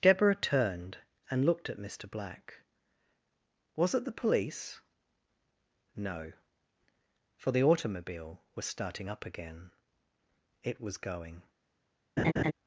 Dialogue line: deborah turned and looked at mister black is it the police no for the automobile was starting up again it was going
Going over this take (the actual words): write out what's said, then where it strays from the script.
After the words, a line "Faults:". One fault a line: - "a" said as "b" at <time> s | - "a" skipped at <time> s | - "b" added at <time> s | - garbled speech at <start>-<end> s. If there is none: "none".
deborah turned and looked at mister black was it the police no for the automobile was starting up again it was going
Faults:
- "is" said as "was" at 3.8 s